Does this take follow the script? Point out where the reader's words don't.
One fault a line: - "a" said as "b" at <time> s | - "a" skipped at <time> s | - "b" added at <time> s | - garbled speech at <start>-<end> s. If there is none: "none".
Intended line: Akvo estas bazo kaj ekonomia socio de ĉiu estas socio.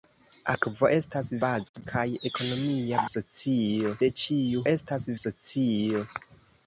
none